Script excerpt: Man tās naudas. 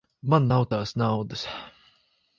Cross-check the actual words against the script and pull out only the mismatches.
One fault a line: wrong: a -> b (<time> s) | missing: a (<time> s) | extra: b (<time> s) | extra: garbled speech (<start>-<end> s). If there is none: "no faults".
extra: nav (0.5 s)